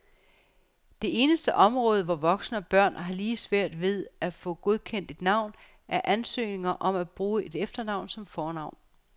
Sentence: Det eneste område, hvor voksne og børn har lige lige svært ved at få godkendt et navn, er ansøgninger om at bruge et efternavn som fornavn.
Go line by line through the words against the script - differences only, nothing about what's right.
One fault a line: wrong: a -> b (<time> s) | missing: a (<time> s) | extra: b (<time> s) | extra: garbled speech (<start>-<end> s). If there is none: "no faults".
missing: lige (3.4 s)